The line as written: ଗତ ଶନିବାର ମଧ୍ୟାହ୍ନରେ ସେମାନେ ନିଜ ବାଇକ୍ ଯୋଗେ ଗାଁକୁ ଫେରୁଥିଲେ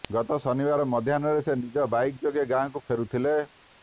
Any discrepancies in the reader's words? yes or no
yes